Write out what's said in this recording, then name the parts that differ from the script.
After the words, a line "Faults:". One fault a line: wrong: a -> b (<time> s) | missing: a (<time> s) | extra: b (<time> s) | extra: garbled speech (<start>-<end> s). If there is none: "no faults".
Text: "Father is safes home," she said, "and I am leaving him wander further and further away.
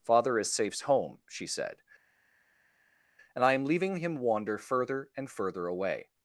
"Father is safes home," she said, "and I am leaving him wander further and further away.
Faults:
no faults